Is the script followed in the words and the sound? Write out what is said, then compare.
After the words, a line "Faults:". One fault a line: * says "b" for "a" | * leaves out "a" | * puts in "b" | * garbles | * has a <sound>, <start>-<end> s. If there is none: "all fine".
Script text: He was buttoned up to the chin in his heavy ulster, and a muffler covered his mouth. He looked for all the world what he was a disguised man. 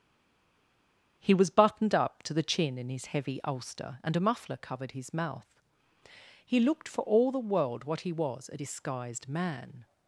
He was buttoned up to the chin in his heavy ulster, and a muffler covered his mouth. He looked for all the world what he was a disguised man.
Faults:
all fine